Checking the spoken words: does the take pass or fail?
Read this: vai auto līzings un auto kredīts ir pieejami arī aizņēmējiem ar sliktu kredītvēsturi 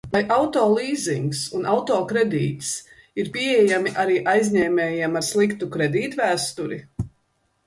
pass